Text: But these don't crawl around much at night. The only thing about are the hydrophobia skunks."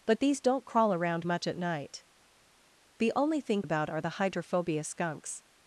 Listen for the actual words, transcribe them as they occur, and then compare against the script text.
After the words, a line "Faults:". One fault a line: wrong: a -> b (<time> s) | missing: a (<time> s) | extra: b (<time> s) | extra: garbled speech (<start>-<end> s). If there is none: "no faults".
But these don't crawl around much at night. The only thing about are the hydrophobia skunks."
Faults:
no faults